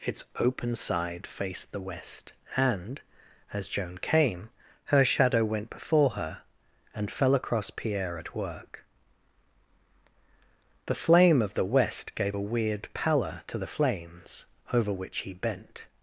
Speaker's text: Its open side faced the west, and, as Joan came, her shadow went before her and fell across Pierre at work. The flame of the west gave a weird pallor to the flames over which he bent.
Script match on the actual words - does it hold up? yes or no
yes